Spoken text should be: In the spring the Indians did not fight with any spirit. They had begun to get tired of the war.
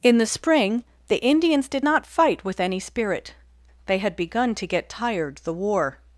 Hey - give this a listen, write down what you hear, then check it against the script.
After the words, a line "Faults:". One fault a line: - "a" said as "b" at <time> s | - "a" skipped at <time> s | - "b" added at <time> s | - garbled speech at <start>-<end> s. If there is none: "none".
In the spring the Indians did not fight with any spirit. They had begun to get tired the war.
Faults:
- "of" skipped at 5.4 s